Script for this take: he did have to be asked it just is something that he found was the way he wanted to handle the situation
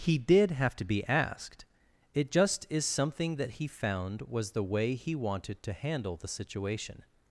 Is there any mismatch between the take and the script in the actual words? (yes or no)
no